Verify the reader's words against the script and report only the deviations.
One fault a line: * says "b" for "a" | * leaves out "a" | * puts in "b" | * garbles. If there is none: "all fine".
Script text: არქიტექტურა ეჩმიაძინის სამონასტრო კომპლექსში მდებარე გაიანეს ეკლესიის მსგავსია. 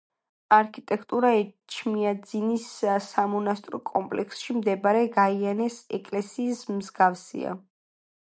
all fine